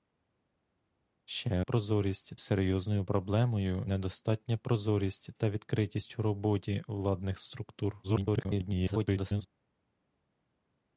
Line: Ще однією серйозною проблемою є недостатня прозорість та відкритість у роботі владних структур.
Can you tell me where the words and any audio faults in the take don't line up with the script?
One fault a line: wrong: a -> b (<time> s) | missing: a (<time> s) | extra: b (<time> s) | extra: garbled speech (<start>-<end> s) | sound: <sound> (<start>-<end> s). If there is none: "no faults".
wrong: однією -> прозорість (1.6 s)
missing: є (3.9 s)
extra: garbled speech (8.0-9.5 s)